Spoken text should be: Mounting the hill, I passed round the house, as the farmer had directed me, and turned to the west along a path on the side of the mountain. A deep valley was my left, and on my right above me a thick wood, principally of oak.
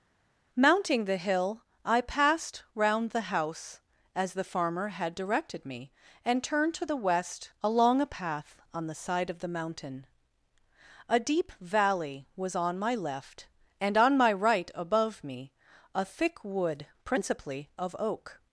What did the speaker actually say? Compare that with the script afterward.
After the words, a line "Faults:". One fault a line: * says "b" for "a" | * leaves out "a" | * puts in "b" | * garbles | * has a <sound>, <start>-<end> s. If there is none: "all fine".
Mounting the hill, I passed round the house, as the farmer had directed me, and turned to the west along a path on the side of the mountain. A deep valley was on my left, and on my right above me a thick wood, principally of oak.
Faults:
* puts in "on"